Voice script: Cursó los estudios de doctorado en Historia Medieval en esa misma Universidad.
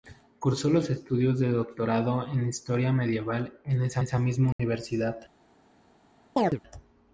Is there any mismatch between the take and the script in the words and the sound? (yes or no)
yes